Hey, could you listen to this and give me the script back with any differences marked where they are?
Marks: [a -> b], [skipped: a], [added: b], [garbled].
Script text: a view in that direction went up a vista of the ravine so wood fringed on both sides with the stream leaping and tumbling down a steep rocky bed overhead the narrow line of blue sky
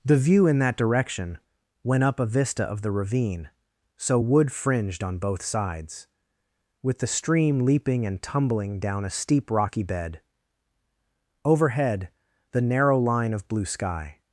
[a -> the] view in that direction went up a vista of the ravine so wood fringed on both sides with the stream leaping and tumbling down a steep rocky bed overhead the narrow line of blue sky